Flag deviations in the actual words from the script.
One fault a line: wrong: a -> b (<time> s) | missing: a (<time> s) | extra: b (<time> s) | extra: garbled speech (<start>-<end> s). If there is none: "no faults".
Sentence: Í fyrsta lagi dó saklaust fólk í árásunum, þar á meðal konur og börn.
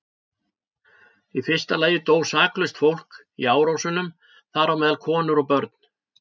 no faults